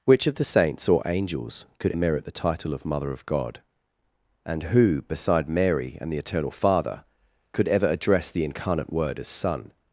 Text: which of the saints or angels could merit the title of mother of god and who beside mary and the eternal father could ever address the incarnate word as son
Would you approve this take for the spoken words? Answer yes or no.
yes